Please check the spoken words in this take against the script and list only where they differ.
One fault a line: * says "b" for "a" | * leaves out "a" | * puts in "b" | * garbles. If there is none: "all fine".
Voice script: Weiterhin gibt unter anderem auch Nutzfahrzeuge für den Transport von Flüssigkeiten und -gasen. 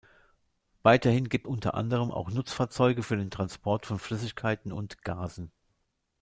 all fine